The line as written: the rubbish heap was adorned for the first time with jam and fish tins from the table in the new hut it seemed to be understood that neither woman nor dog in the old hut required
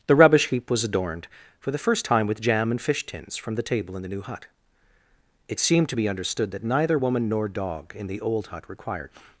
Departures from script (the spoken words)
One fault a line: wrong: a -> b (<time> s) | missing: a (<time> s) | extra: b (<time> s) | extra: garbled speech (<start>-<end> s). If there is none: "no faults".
no faults